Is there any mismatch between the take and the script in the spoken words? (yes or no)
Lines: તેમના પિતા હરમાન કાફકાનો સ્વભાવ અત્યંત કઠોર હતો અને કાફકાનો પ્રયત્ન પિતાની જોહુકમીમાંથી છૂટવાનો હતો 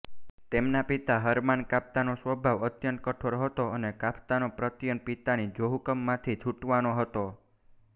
no